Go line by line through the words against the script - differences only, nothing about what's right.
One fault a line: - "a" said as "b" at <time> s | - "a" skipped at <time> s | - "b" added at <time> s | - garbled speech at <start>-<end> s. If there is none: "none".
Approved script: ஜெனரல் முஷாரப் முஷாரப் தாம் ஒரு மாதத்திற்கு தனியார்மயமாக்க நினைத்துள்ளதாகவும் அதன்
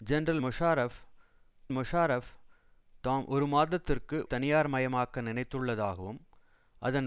none